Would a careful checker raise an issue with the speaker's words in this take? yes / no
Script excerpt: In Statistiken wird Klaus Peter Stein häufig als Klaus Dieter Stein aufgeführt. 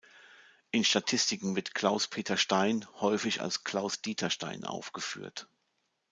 no